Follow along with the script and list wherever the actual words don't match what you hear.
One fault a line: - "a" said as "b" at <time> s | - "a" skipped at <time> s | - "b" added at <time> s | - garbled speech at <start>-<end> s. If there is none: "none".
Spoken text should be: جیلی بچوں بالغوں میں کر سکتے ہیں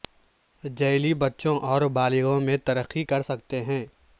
- "اور" added at 1.6 s
- "ترقی" added at 2.6 s